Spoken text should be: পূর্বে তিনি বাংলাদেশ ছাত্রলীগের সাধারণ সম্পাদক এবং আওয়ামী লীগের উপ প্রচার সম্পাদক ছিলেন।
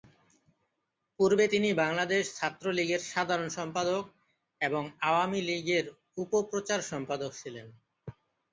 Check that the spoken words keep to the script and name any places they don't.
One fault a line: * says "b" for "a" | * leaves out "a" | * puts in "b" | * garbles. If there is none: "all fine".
all fine